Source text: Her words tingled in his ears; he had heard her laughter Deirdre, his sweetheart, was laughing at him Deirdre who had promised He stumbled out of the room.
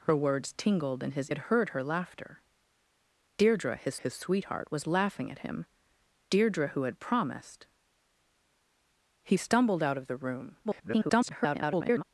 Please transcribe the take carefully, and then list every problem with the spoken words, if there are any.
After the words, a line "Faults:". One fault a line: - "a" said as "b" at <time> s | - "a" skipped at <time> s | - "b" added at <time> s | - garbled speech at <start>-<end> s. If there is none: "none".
Her words tingled in his had heard her laughter Deirdre, his his sweetheart, was laughing at him Deirdre who had promised He stumbled out of the room. [garbled]
Faults:
- "ears he" skipped at 1.3 s
- "his" added at 4.0 s
- garbled speech at 10.6-12.0 s